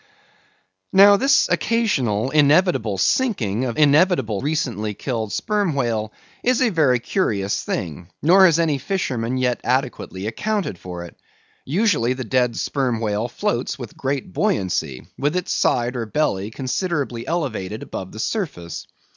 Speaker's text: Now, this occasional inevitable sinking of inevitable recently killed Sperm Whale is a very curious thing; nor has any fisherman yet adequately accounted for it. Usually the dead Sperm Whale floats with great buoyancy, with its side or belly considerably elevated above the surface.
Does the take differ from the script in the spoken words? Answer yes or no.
no